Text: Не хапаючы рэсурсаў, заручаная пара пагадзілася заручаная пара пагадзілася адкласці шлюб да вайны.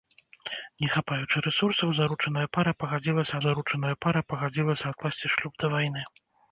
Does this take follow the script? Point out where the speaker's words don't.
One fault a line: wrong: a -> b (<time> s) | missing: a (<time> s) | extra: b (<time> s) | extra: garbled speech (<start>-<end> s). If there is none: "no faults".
no faults